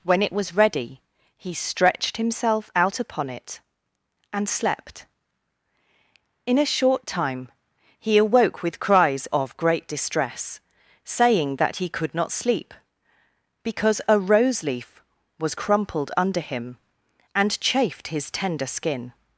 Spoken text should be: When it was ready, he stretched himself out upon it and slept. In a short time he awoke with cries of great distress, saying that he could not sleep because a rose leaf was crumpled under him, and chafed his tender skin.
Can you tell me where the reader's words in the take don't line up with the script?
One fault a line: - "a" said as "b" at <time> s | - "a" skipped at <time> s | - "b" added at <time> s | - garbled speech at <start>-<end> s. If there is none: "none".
none